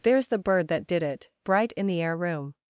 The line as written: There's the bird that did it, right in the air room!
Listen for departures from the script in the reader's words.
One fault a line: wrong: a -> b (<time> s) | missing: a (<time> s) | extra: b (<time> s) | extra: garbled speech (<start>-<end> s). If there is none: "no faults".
wrong: right -> bright (1.4 s)